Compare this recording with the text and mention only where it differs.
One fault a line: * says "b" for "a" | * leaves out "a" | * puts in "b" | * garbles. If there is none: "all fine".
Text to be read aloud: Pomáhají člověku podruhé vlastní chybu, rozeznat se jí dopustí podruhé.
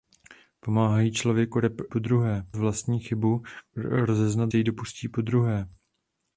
all fine